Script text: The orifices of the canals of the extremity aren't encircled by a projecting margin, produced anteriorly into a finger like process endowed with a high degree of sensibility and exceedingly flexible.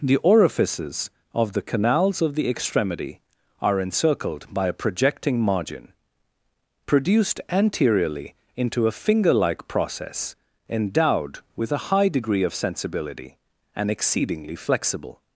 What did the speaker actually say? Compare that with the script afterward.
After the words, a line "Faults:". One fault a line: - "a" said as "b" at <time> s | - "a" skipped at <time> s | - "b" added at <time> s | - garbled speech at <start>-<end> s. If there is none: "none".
The orifices of the canals of the extremity are encircled by a projecting margin, produced anteriorly into a finger like process endowed with a high degree of sensibility and exceedingly flexible.
Faults:
- "aren't" said as "are" at 3.6 s